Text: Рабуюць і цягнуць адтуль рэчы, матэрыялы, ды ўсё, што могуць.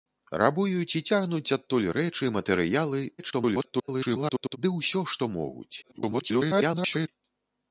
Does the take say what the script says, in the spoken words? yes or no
no